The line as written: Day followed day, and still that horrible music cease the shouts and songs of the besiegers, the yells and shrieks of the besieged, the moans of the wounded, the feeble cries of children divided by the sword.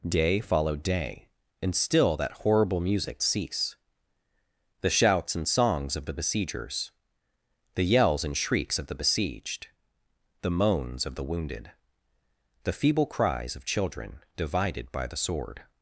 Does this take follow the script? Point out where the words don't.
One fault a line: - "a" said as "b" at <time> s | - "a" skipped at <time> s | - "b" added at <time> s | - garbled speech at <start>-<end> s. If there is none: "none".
none